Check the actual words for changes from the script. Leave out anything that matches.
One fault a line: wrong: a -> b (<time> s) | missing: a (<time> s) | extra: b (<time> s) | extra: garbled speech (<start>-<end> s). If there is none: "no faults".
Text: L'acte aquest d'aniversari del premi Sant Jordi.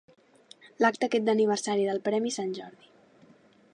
no faults